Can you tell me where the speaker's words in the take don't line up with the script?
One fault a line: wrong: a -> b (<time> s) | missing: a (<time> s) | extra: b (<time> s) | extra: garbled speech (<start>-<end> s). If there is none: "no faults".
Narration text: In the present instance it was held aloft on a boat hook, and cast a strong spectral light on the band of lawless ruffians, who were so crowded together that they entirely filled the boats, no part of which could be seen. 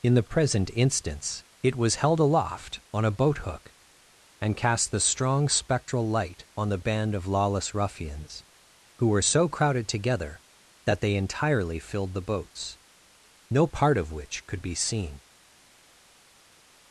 wrong: a -> the (4.9 s)